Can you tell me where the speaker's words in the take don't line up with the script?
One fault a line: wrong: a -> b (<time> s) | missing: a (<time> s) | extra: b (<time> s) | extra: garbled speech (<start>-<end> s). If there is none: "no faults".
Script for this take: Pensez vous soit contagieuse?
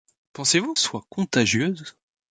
no faults